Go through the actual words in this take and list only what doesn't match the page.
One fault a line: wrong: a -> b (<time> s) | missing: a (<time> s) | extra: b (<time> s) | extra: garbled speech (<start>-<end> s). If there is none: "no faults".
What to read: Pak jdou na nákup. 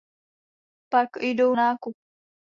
missing: na (1.6 s)